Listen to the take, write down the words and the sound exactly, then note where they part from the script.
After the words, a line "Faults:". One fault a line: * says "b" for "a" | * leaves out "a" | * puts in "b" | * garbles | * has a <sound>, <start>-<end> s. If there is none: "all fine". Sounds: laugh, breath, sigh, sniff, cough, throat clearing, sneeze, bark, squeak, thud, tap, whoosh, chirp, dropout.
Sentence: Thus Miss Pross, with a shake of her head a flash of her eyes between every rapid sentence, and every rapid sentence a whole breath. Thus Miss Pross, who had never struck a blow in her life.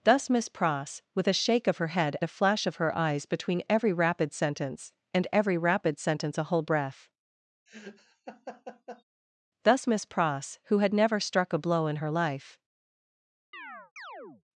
Thus Miss Pross, with a shake of her head a flash of her eyes between every rapid sentence, and every rapid sentence a whole breath. Thus Miss Pross, who had never struck a blow in her life.
Faults:
* has a laugh, 7.7-9.0 s
* has a chirp, 13.5-14.4 s